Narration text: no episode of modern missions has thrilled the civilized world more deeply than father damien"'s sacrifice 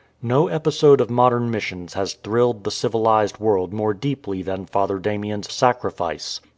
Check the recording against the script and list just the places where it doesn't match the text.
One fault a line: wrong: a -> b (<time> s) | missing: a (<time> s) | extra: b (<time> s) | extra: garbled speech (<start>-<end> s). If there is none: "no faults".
no faults